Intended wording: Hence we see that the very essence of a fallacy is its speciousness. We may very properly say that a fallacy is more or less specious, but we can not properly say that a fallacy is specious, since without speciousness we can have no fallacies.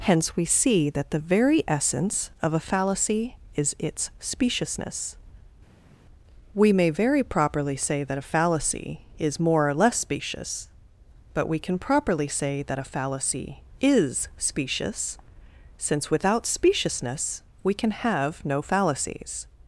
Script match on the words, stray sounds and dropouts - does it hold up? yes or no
no